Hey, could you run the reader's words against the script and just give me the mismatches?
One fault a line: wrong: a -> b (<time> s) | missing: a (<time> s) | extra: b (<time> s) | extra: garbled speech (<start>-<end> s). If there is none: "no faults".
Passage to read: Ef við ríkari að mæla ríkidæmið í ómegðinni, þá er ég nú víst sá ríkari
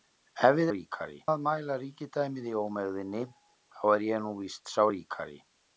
no faults